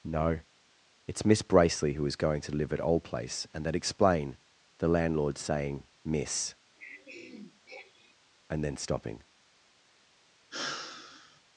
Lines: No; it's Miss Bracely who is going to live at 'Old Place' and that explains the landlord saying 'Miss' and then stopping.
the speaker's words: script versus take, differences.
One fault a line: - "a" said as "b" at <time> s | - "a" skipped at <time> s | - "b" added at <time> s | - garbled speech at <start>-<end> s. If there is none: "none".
- "explains" said as "explain" at 3.8 s